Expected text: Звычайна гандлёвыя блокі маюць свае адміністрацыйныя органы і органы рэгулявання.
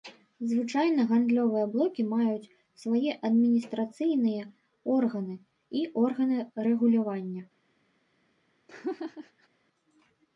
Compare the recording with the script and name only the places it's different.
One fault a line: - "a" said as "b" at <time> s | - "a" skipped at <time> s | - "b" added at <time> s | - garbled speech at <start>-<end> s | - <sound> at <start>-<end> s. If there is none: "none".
- laugh at 8.7-9.5 s